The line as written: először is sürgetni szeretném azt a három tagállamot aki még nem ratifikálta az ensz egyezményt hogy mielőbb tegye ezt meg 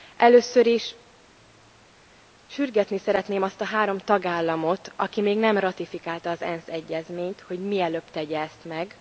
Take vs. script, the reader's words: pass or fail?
pass